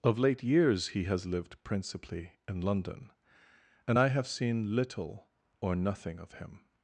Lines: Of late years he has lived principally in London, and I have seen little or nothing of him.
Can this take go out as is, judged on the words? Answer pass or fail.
pass